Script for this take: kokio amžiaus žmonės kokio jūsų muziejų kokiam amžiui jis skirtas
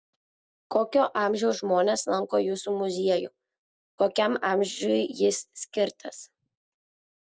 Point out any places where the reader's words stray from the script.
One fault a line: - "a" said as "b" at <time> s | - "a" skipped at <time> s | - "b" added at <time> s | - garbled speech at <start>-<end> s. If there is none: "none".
- "kokio" said as "lanko" at 2.1 s